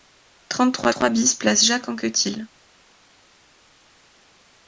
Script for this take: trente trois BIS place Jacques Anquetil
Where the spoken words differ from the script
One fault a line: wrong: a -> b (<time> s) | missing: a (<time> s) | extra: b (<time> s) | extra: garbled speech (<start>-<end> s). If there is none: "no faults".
extra: trois (0.9 s)